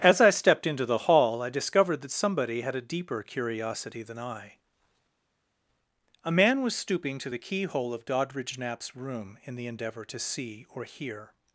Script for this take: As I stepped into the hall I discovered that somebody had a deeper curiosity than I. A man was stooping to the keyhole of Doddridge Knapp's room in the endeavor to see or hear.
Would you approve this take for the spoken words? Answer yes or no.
yes